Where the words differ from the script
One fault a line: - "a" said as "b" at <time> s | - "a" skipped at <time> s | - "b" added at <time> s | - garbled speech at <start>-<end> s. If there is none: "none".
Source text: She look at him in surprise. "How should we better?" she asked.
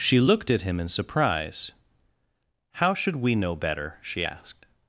- "look" said as "looked" at 0.2 s
- "know" added at 3.3 s